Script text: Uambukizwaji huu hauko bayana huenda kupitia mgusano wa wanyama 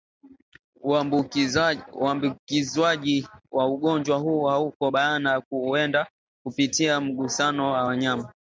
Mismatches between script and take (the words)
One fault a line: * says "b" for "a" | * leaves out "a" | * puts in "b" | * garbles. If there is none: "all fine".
* puts in "wa ugonjwa"